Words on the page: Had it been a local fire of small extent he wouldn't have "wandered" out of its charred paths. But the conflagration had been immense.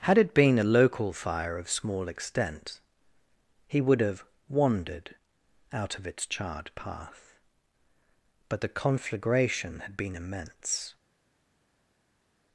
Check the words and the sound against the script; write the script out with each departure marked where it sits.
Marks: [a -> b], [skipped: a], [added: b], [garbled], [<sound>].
Had it been a local fire of small extent he [wouldn't -> would] have "wandered" out of its charred [paths. -> path] But the conflagration had been immense.